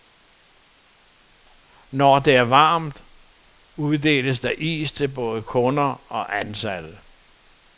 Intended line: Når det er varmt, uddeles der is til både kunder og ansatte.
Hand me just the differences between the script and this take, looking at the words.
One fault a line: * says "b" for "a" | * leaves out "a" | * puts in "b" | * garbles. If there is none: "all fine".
all fine